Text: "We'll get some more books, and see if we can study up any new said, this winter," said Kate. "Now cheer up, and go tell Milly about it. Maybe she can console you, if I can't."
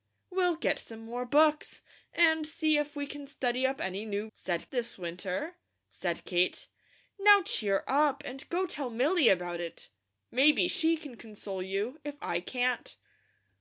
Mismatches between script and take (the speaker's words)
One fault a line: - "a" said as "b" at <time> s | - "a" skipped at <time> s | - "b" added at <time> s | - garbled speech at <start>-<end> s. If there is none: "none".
none